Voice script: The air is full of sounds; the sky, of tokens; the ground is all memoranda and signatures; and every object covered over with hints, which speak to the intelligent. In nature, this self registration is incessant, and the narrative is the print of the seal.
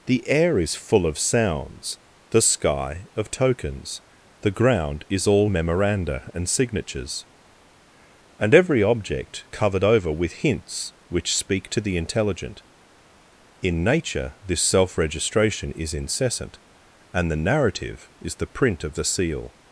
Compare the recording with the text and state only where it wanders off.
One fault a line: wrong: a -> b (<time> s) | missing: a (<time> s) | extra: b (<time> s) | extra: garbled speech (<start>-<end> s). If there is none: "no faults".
no faults